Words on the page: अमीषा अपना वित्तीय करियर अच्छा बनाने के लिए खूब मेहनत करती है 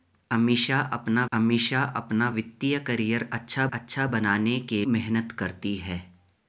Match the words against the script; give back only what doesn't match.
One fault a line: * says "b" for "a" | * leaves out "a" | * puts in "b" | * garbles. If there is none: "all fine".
* puts in "अमीषा अपना"
* puts in "अच्छा"
* leaves out "लिए खूब"